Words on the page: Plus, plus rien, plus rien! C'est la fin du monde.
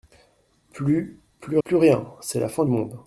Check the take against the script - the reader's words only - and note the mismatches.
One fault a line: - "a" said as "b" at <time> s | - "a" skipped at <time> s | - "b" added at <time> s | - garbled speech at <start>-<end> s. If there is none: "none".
- "rien" skipped at 1.6 s
- "du" skipped at 2.6 s